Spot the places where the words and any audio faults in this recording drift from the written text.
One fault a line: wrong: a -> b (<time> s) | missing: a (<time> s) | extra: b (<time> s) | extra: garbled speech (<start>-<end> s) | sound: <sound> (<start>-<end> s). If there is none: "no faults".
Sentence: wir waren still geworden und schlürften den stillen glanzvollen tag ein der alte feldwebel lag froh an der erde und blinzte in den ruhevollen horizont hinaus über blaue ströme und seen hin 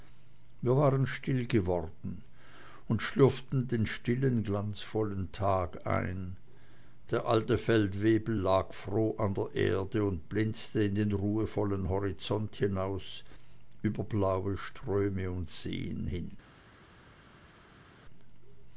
no faults